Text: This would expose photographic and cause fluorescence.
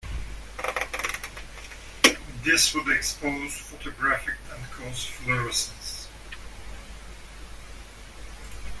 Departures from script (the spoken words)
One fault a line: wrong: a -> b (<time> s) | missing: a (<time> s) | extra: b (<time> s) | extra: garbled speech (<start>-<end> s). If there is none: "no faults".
no faults